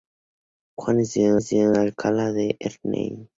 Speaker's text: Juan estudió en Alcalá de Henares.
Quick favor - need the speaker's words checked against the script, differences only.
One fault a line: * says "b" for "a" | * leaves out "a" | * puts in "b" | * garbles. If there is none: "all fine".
* puts in "estudió"